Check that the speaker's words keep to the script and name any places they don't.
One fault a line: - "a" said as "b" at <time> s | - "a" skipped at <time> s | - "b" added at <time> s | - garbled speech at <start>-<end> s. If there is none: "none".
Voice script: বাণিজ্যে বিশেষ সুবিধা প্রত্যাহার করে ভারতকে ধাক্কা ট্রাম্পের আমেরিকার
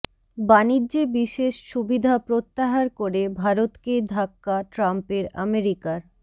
none